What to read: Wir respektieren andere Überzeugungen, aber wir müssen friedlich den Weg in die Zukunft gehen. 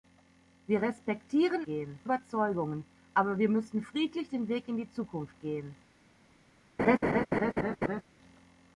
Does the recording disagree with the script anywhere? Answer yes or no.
yes